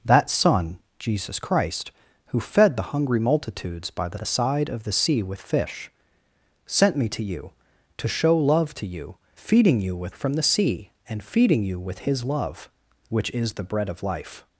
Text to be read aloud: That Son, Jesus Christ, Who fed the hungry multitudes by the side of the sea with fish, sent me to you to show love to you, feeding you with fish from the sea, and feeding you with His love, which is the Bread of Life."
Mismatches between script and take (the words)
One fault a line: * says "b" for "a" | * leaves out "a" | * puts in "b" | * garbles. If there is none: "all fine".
* puts in "the"
* leaves out "fish"